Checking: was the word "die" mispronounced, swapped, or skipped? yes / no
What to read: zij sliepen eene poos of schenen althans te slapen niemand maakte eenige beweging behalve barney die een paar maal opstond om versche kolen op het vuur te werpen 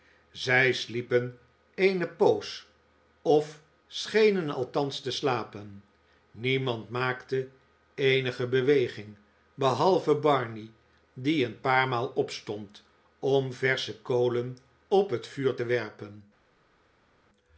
no